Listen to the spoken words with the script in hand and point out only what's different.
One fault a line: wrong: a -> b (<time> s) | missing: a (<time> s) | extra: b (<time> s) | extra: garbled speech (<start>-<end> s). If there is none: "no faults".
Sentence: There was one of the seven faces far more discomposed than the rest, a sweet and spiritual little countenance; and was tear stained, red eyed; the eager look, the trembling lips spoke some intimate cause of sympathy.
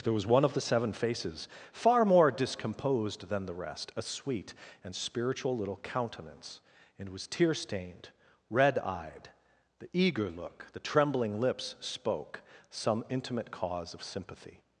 no faults